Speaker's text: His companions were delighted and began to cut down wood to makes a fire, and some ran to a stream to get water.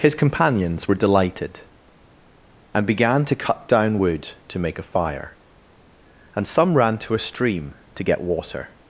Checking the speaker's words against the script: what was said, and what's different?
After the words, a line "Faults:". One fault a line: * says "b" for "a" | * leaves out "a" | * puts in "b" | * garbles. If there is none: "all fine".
His companions were delighted and began to cut down wood to make a fire, and some ran to a stream to get water.
Faults:
* says "make" for "makes"